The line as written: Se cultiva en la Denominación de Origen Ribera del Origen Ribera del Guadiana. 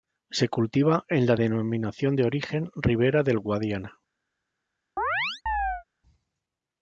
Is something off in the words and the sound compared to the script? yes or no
yes